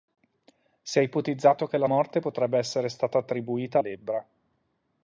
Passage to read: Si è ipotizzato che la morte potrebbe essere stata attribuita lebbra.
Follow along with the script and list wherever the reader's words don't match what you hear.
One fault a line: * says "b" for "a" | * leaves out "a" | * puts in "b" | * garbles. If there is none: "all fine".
all fine